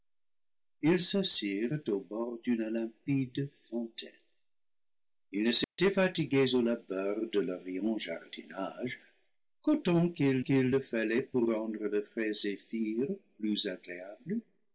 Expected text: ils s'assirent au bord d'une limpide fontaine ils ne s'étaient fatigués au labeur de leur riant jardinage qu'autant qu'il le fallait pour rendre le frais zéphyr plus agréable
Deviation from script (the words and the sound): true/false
true